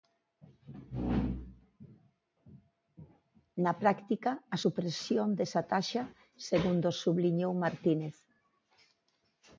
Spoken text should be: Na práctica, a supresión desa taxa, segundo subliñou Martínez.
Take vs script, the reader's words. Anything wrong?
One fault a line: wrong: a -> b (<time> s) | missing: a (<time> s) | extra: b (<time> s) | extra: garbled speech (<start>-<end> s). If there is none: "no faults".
no faults